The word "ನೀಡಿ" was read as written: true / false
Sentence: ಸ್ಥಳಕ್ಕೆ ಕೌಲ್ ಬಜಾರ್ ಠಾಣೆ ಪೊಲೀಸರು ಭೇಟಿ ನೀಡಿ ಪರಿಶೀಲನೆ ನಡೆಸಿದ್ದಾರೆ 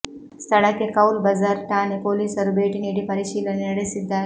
true